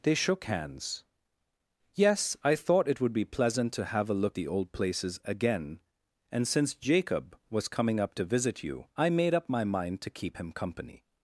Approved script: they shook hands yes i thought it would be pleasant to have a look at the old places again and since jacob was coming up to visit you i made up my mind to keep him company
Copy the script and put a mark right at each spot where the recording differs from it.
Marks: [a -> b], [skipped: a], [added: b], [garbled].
they shook hands yes i thought it would be pleasant to have a look [skipped: at] the old places again and since jacob was coming up to visit you i made up my mind to keep him company